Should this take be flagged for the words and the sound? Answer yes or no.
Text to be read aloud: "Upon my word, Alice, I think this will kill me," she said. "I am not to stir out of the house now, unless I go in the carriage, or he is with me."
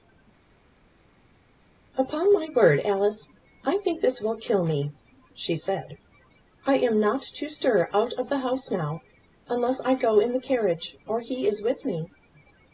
no